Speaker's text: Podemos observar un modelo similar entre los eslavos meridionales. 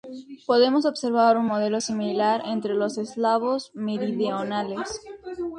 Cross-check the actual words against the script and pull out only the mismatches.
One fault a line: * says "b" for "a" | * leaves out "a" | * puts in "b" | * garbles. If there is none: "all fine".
all fine